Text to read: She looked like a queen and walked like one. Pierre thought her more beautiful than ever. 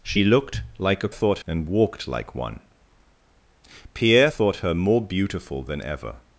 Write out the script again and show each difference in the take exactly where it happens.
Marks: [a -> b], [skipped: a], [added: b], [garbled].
She looked like a [queen -> thought] and walked like one. Pierre thought her more beautiful than ever.